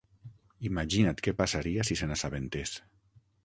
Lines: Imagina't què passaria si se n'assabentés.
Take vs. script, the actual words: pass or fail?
pass